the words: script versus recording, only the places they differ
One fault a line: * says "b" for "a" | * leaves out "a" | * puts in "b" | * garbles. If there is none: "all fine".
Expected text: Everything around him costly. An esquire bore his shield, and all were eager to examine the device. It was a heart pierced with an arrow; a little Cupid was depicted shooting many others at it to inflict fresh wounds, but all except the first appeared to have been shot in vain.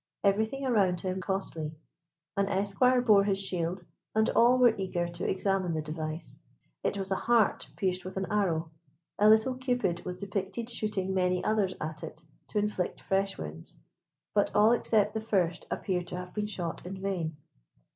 all fine